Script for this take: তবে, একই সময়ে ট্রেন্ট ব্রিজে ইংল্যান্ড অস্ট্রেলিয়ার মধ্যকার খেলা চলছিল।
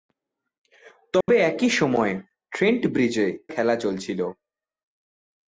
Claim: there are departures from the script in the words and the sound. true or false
true